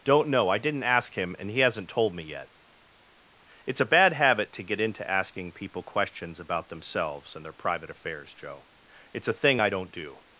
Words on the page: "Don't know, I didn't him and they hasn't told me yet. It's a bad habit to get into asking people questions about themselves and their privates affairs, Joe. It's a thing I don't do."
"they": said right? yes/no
no